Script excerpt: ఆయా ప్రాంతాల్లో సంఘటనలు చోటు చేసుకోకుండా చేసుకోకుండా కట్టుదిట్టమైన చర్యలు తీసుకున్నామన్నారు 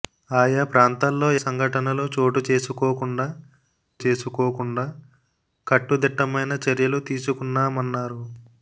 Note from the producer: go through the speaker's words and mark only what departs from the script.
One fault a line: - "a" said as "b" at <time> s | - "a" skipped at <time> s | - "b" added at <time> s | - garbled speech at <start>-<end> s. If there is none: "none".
none